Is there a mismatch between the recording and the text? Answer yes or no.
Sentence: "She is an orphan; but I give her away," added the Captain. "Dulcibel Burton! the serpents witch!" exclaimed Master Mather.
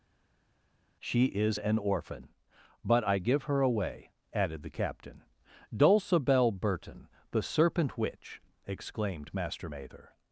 yes